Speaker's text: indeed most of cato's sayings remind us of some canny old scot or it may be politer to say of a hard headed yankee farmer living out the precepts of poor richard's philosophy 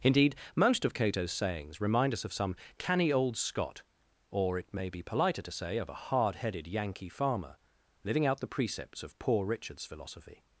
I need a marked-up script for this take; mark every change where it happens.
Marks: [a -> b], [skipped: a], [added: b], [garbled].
indeed most of cato's sayings remind us of some canny old scot or it may be politer to say of a hard headed yankee farmer living out the precepts of poor richard's philosophy